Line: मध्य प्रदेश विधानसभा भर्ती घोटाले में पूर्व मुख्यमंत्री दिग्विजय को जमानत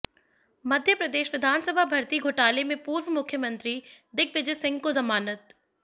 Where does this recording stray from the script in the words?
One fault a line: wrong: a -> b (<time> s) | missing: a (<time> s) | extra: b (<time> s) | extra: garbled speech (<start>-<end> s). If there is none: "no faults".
extra: सिंह (4.5 s)